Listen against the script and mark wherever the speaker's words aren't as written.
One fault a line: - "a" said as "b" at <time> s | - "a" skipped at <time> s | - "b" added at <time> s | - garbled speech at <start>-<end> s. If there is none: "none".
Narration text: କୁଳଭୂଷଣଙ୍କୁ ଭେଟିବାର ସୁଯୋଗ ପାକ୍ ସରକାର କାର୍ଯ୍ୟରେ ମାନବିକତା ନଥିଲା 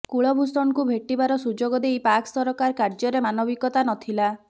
- "ଦେଇ" added at 1.8 s